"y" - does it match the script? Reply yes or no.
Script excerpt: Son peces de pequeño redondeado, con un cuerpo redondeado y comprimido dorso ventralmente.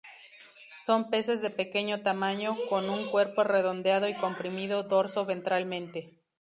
yes